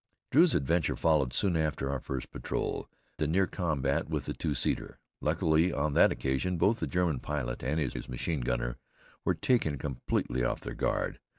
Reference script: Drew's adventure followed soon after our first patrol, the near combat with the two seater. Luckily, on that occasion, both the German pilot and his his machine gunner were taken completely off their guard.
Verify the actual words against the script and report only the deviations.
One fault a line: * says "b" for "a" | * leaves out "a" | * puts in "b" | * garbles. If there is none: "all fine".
all fine